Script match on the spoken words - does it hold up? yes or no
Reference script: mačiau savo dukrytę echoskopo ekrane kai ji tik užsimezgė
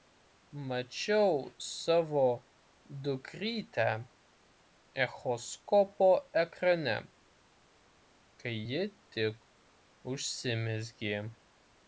yes